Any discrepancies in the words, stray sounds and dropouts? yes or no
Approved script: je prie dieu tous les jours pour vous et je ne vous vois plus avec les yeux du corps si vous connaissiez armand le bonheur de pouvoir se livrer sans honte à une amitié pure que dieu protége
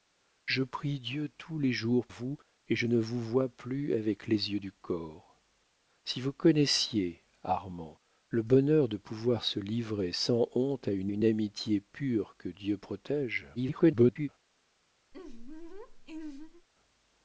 yes